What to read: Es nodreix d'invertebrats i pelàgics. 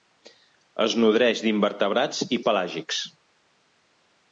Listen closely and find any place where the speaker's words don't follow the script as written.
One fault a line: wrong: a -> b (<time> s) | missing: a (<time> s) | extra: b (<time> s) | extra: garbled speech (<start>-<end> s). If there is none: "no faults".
no faults